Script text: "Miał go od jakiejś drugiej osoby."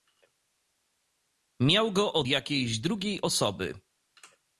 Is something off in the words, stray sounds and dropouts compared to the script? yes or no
no